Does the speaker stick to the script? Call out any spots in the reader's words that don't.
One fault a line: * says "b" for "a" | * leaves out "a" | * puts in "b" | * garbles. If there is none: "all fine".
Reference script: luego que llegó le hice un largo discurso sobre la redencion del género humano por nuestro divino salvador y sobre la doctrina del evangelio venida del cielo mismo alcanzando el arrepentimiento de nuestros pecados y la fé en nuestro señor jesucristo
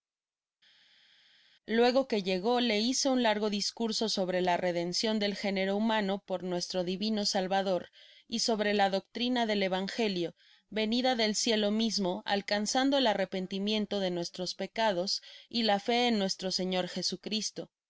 all fine